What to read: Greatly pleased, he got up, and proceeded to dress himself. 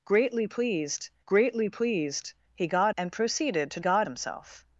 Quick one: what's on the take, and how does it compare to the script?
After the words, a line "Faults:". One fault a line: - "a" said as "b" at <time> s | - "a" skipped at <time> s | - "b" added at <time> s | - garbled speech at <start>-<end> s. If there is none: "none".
Greatly pleased greatly pleased, he got and proceeded to got himself.
Faults:
- "greatly pleased" added at 1.2 s
- "up" skipped at 2.9 s
- "dress" said as "got" at 3.8 s